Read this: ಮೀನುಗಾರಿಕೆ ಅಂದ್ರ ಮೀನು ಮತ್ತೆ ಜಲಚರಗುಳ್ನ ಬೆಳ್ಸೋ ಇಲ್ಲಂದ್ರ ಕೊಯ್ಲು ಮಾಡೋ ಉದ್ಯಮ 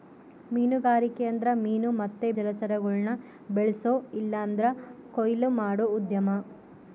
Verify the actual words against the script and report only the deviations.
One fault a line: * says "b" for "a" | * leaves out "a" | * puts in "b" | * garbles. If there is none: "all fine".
all fine